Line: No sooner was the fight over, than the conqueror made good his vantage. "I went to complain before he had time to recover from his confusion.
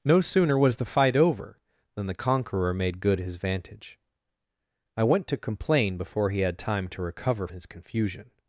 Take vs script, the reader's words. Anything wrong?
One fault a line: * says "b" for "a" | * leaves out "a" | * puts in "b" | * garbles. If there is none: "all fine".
* leaves out "from"